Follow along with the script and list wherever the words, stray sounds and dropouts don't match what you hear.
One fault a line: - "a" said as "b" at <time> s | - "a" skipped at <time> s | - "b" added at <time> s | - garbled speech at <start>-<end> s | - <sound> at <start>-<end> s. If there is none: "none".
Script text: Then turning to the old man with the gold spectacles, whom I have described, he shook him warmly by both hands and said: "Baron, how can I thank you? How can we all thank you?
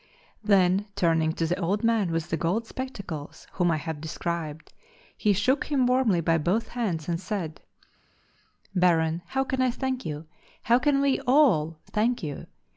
none